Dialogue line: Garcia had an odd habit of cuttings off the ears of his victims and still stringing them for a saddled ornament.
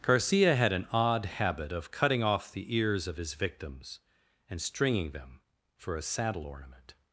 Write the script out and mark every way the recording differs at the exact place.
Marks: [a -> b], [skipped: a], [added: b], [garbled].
Garcia had an odd habit of [cuttings -> cutting] off the ears of his victims and [skipped: still] stringing them for a [saddled -> saddle] ornament.